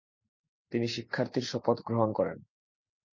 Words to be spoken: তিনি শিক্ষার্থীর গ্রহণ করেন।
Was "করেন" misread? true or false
false